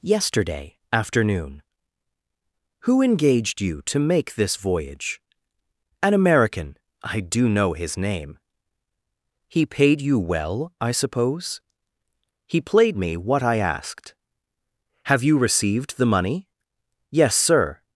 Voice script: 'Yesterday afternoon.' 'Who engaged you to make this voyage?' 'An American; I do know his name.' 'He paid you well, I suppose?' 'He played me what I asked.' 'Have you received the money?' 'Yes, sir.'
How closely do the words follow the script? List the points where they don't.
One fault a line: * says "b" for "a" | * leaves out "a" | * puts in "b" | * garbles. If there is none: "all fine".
all fine